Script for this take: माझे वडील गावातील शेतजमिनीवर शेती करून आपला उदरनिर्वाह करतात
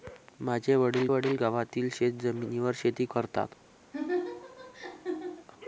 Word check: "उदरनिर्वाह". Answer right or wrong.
wrong